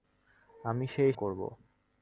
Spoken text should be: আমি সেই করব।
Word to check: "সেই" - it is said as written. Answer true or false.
true